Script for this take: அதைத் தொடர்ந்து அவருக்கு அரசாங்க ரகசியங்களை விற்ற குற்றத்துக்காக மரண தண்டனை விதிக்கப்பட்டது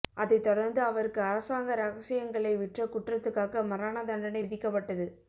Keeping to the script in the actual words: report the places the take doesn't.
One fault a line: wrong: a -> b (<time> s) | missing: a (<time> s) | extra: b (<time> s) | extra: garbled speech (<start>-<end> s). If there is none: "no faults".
no faults